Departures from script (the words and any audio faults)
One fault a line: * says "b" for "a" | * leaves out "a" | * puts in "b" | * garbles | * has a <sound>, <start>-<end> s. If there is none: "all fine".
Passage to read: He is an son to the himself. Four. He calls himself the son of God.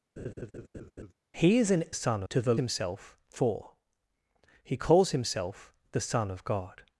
* has a laugh, 0.2-1.1 s